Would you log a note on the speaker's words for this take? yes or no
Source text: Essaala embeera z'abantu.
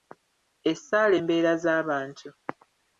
no